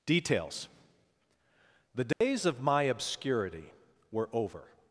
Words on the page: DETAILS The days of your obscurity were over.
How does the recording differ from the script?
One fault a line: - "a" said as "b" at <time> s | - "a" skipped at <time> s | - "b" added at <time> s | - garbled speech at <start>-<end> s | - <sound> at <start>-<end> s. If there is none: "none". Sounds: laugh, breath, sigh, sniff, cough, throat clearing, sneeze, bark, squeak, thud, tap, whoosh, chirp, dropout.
- dropout at 2.1-2.2 s
- "your" said as "my" at 2.6 s